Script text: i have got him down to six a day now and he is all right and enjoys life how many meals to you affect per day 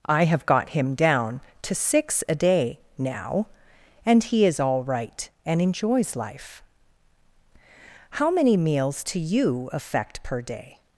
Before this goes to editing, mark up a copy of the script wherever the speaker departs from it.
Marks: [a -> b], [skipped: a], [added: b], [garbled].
i have got him down to six a day now and he is all right and enjoys life how many meals to you affect per day